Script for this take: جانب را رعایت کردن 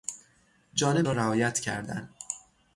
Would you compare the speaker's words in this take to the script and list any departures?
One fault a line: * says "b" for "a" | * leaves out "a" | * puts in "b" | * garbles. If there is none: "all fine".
all fine